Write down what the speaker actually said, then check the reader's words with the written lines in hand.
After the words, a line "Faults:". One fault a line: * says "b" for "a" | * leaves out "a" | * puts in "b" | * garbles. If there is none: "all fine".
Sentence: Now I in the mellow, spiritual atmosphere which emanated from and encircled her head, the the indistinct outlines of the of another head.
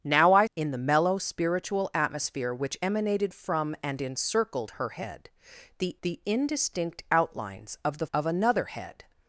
Now I in the mellow, spiritual atmosphere which emanated from and encircled her head, the the indistinct outlines of the of another head.
Faults:
all fine